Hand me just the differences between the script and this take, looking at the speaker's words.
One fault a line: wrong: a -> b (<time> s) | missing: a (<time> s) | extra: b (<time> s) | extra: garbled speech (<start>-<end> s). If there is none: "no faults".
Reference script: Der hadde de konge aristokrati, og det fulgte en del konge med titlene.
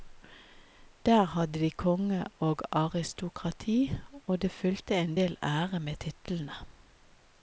extra: og (2.4 s)
wrong: konge -> ære (5.4 s)